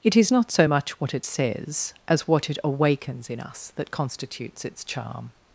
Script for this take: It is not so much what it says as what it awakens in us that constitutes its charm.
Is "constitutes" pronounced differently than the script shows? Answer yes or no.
no